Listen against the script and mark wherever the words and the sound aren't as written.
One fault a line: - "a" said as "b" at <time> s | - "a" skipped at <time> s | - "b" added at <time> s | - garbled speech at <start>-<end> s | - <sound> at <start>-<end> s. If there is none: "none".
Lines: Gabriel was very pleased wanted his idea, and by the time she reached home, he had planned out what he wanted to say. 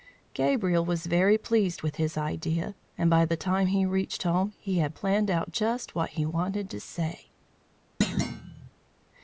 - "wanted" said as "with" at 1.8 s
- "she" said as "he" at 3.7 s
- "just" added at 5.5 s
- thud at 8.0-8.7 s